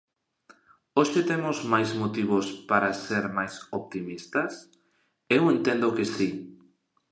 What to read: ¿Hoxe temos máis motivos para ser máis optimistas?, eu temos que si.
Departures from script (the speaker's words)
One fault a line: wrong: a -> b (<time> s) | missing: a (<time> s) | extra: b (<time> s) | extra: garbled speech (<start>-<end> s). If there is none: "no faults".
wrong: temos -> entendo (5.5 s)